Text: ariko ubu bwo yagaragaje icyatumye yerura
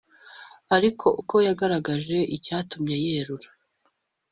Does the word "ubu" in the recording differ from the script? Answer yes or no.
yes